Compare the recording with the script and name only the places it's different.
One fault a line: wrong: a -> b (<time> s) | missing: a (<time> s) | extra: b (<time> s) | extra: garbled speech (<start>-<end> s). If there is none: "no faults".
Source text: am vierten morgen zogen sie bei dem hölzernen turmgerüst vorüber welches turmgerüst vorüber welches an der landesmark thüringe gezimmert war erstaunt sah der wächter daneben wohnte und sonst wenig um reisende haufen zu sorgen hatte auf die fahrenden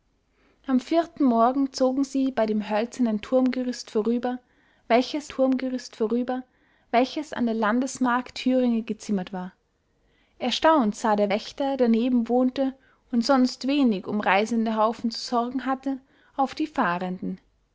no faults